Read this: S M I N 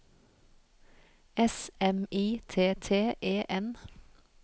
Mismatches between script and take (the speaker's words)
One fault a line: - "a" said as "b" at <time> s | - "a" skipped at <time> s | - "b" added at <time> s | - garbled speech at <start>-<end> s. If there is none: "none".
- "T T E" added at 2.5 s